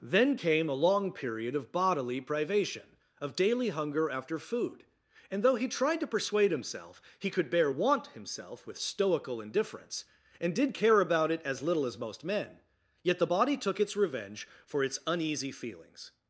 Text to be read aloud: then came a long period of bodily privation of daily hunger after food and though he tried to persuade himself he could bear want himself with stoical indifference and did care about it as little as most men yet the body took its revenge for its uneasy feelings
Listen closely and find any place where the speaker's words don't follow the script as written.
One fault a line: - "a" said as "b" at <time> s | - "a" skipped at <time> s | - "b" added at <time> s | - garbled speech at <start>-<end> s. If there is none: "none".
none